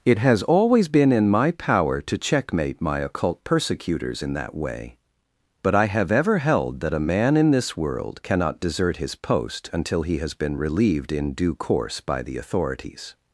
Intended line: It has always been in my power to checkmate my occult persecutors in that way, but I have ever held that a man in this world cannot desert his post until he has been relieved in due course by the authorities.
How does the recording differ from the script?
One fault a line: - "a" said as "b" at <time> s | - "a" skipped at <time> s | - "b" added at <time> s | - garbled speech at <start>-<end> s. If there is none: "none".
none